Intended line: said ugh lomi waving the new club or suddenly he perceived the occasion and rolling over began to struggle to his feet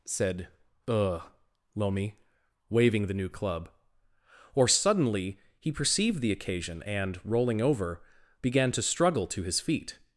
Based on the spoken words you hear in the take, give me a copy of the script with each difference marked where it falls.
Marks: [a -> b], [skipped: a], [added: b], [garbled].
said ugh lomi waving the new club or suddenly he perceived the occasion and rolling over began to struggle to his feet